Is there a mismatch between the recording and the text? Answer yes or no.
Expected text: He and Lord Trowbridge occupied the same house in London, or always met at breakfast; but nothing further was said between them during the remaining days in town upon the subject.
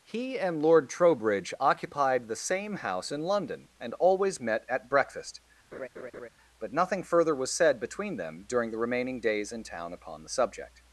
yes